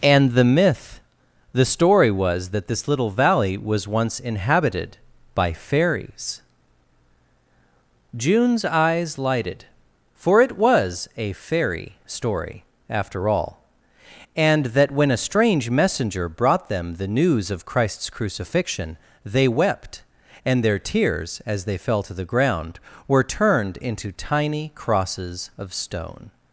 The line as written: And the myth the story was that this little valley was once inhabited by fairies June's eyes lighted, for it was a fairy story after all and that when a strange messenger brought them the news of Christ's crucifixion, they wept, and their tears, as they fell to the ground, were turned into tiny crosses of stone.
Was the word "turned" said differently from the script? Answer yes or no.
no